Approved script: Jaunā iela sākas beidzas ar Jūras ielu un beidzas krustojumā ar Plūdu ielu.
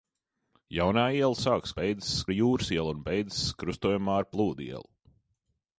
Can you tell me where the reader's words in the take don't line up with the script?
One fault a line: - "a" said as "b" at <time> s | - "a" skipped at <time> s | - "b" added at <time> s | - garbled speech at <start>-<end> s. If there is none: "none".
none